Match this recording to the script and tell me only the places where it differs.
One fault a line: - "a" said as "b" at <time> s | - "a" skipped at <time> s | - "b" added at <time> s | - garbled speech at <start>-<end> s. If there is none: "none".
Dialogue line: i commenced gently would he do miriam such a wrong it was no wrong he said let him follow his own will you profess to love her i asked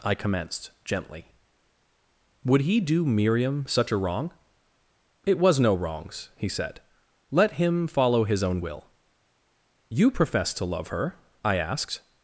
- "wrong" said as "wrongs" at 5.8 s